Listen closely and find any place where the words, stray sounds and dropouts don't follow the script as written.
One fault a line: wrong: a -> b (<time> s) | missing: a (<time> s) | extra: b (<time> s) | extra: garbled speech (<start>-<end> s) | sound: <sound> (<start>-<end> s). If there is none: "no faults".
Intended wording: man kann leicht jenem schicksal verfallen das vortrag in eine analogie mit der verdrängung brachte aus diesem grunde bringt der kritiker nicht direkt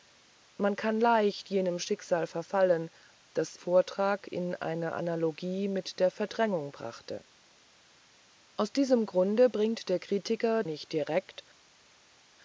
no faults